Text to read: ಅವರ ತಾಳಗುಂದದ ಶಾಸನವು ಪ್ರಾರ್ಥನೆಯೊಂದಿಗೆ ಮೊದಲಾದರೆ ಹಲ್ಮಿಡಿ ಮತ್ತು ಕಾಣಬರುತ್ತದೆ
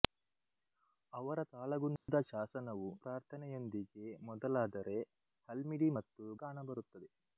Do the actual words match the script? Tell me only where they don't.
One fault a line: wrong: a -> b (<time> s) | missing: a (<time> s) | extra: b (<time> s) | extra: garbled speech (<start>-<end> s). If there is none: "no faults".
no faults